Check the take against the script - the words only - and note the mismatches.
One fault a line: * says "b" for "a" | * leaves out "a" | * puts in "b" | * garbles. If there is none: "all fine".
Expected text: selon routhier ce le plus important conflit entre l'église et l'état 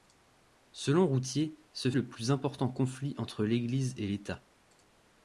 all fine